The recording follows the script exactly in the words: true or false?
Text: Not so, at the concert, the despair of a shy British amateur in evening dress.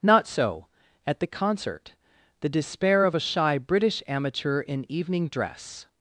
true